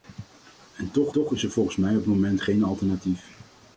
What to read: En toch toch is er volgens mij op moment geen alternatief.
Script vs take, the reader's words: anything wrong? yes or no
no